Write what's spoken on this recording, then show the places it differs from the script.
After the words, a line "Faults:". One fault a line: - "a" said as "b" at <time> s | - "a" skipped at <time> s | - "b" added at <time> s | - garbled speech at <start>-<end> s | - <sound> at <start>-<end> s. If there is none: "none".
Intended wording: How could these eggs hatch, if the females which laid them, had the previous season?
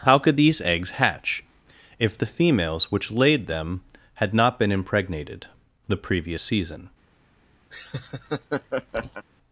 How could these eggs hatch, if the females which laid them, had not been impregnated, the previous season?
Faults:
- "not been impregnated" added at 4.3 s
- laugh at 7.7-9.2 s